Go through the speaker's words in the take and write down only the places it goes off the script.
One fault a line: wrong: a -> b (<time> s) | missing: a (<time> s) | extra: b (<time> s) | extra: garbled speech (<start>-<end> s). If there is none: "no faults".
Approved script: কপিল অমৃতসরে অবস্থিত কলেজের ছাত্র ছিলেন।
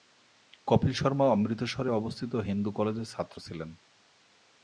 extra: শর্মা (0.9 s)
extra: হিন্দু (2.5 s)